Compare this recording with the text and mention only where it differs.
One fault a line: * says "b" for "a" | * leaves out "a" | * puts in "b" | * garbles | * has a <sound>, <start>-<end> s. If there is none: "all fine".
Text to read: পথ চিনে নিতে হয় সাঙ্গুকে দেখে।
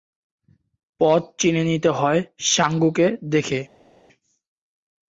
all fine